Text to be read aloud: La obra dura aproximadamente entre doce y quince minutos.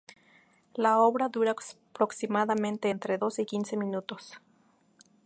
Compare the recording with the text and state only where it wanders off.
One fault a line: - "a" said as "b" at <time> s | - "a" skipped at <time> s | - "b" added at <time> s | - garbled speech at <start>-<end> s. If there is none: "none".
none